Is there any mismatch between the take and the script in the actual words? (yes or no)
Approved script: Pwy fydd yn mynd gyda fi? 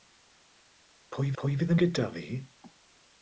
yes